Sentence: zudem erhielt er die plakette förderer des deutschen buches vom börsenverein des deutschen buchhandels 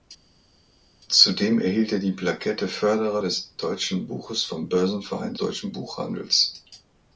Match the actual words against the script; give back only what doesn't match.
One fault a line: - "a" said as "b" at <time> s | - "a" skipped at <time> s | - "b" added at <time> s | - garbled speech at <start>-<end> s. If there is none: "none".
- "des" skipped at 5.3 s